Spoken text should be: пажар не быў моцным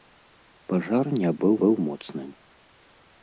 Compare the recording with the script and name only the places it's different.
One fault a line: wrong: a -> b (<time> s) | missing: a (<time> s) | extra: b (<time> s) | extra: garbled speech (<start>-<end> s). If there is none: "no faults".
extra: быў (1.6 s)